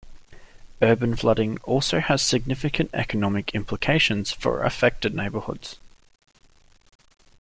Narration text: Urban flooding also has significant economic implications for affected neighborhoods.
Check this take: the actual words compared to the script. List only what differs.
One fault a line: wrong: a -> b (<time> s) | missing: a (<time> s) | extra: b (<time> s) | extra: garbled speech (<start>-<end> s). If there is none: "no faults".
no faults